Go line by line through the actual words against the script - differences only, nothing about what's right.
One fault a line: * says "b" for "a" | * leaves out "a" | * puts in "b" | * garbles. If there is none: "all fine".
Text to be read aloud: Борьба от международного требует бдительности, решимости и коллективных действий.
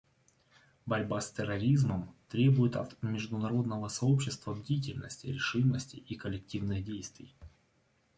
* puts in "с терроризмом требует"
* says "сообщества" for "требует"